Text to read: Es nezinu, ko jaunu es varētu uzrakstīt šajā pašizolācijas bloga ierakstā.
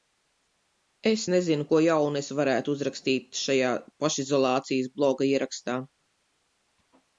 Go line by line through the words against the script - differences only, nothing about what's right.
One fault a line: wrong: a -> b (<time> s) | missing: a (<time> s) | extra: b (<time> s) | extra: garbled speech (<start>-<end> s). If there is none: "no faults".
no faults